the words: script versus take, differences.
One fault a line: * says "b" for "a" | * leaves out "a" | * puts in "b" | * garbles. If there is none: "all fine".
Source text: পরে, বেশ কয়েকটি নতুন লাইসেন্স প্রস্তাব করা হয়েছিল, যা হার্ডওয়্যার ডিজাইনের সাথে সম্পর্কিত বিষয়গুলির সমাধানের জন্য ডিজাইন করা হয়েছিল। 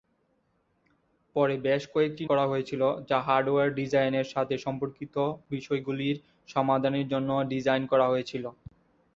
* leaves out "নতুন লাইসেন্স প্রস্তাব"